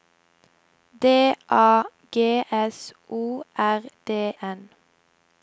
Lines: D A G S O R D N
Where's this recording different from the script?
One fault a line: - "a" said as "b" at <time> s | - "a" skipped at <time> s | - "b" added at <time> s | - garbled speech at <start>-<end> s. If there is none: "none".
none